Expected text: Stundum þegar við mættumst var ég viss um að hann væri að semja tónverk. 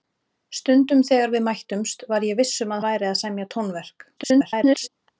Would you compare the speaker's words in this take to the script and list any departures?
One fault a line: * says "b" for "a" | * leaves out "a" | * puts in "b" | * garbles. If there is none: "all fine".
* leaves out "hann"
* garbles